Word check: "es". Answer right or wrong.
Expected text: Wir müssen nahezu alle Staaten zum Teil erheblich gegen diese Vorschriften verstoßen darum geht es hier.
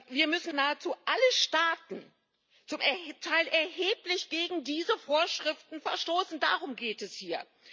right